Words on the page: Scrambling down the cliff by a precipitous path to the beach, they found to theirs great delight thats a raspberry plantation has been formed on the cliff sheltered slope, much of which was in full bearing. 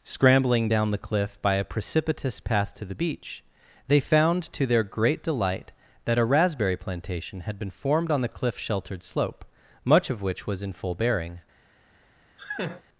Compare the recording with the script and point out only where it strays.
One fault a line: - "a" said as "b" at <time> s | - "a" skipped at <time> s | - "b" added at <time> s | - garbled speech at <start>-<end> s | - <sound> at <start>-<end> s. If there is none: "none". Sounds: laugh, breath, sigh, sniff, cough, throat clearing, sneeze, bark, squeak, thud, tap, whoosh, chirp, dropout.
- "theirs" said as "their" at 4.6 s
- "thats" said as "that" at 6.0 s
- "has" said as "had" at 7.4 s
- laugh at 12.4-12.8 s